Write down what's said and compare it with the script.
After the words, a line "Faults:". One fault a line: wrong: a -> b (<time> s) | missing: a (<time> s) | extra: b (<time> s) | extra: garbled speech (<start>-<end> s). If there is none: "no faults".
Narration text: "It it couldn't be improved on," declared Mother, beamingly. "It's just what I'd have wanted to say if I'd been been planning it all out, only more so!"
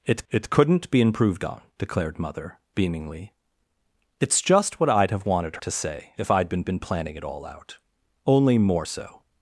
"It it couldn't be improved on," declared Mother, beamingly. "It's just what I'd have wanted to say if I'd been been planning it all out, only more so!"
Faults:
no faults